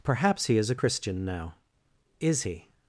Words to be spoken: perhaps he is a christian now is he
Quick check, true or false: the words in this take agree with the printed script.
true